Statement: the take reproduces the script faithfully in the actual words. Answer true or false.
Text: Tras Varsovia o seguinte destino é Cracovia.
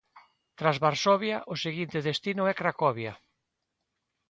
true